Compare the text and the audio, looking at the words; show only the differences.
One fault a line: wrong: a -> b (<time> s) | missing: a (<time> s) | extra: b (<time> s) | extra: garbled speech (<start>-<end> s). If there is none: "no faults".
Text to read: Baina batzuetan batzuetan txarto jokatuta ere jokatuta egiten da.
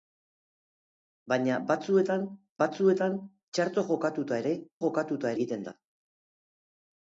no faults